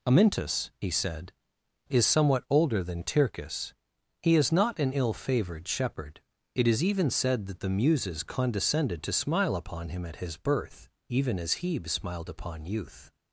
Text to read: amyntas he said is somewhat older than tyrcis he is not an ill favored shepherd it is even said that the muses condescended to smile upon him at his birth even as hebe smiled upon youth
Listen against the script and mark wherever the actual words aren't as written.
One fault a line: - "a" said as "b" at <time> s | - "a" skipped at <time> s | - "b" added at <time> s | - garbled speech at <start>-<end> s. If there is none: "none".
none